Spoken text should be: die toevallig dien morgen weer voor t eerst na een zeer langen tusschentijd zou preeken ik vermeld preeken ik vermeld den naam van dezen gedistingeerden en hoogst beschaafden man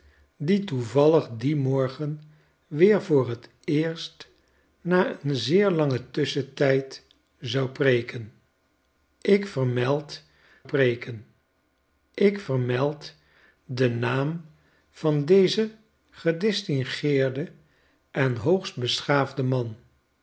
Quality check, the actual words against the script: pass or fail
pass